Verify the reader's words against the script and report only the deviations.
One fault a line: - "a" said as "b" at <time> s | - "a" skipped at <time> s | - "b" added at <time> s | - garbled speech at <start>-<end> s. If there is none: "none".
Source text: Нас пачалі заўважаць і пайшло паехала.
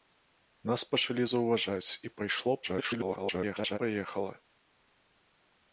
- garbled speech at 2.6-3.8 s